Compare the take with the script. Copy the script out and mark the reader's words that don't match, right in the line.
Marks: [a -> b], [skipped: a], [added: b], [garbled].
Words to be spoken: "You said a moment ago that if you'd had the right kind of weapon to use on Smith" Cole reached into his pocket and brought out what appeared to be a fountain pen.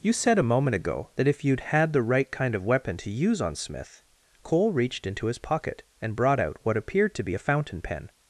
"You said a moment ago that if you'd had the right kind of weapon to use on Smith" Cole reached into his pocket and brought out what appeared to be a fountain pen.